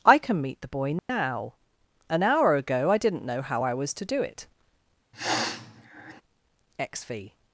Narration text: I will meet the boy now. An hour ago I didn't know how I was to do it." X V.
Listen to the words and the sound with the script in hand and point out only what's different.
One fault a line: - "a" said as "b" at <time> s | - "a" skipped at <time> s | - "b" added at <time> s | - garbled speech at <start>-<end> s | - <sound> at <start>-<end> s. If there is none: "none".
- "will" said as "can" at 0.2 s
- dropout at 1.0-1.1 s
- sniff at 5.1-6.2 s